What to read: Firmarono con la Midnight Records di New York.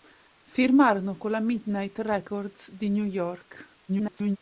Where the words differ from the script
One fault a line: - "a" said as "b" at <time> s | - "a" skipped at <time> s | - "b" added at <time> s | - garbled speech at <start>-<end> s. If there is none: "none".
- garbled speech at 3.9-4.4 s